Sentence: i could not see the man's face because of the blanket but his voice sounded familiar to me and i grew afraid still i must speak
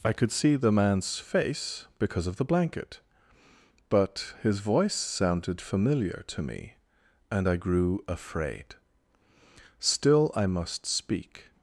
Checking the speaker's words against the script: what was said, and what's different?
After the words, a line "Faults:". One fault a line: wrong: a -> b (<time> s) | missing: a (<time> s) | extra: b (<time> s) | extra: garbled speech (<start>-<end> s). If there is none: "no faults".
i could see the man's face because of the blanket but his voice sounded familiar to me and i grew afraid still i must speak
Faults:
missing: not (0.3 s)